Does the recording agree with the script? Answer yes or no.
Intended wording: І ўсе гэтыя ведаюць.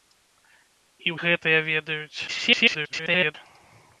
no